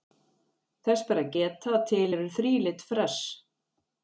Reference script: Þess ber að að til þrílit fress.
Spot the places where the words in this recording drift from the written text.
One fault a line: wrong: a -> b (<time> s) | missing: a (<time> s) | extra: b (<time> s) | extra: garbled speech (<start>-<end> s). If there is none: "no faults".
extra: geta (1.3 s)
extra: eru (2.2 s)